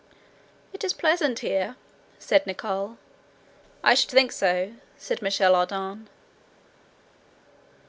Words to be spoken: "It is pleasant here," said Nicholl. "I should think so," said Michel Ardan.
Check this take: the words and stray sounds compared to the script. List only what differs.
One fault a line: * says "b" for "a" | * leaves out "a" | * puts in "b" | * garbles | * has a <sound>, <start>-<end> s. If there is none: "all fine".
all fine